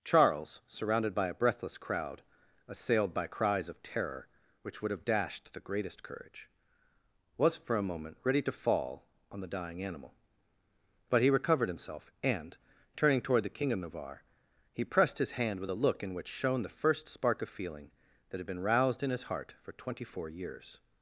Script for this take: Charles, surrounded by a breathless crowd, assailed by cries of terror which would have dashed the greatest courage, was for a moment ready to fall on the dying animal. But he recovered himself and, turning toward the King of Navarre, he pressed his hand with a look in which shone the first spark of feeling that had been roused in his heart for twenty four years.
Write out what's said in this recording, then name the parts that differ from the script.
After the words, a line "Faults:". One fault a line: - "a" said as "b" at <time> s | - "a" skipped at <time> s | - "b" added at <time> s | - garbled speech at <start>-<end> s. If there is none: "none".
Charles, surrounded by a breathless crowd, assailed by cries of terror which would have dashed the greatest courage, was for a moment ready to fall on the dying animal. But he recovered himself and, turning toward the King of Navarre, he pressed his hand with a look in which shone the first spark of feeling that had been roused in his heart for twenty four years.
Faults:
none